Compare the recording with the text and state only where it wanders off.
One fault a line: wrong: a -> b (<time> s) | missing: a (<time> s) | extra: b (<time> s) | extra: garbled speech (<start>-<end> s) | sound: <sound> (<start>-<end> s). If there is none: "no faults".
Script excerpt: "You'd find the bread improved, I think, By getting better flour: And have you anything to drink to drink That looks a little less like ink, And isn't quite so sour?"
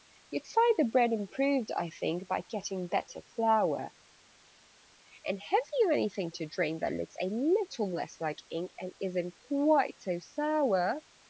missing: to drink (6.8 s)